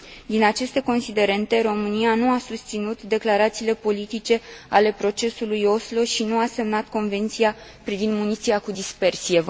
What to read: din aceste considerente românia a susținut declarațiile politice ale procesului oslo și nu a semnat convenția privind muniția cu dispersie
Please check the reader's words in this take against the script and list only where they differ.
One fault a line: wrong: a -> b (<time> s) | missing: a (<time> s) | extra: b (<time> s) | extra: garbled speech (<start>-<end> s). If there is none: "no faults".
extra: nu (2.1 s)